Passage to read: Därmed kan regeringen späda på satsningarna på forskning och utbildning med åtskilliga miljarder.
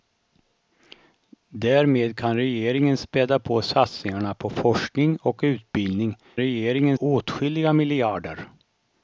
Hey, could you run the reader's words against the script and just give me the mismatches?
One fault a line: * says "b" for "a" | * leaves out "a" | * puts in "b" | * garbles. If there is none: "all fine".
* says "regeringen" for "med"